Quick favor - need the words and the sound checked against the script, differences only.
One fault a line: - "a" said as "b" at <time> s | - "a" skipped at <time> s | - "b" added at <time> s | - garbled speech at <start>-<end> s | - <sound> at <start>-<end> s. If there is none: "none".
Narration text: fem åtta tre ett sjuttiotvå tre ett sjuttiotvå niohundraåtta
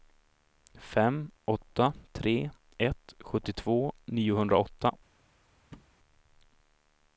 - "tre ett sjuttiotvå" skipped at 3.9 s
- thud at 5.7-5.9 s